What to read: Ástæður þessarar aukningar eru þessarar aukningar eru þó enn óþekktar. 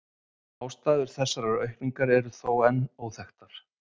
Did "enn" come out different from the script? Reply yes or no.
no